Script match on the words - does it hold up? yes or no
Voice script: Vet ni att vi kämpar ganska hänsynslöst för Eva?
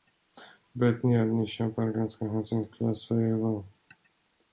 no